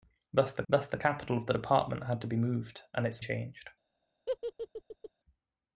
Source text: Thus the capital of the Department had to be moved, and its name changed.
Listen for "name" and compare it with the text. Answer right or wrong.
wrong